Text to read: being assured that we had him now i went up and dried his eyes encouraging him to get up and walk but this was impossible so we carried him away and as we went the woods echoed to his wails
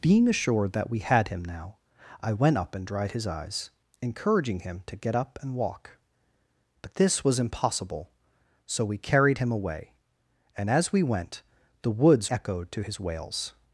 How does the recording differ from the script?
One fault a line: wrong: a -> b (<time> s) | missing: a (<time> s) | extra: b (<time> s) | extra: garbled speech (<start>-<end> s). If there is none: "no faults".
no faults